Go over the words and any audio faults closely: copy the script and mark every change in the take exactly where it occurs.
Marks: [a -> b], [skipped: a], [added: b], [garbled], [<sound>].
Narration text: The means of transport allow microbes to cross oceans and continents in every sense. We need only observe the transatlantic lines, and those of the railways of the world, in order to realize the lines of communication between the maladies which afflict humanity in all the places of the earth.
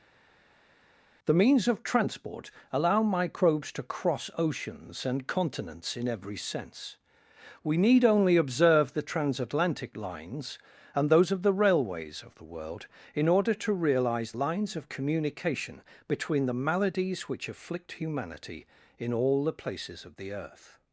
The means of transport allow microbes to cross oceans and continents in every sense. We need only observe the transatlantic lines, and those of the railways of the world, in order to realize [skipped: the] lines of communication between the maladies which afflict humanity in all the places of the earth.